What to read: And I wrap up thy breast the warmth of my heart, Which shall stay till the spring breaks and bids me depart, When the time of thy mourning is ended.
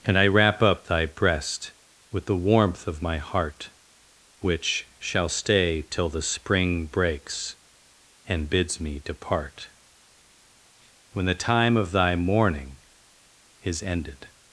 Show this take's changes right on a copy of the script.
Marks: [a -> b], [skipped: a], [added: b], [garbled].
And I wrap up thy breast [added: with] the warmth of my heart, Which shall stay till the spring breaks and bids me depart, When the time of thy mourning is ended.